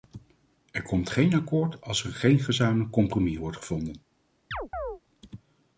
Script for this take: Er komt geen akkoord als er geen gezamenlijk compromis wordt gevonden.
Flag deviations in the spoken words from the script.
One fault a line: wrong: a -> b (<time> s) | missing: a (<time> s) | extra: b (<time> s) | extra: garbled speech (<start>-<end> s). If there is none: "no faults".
no faults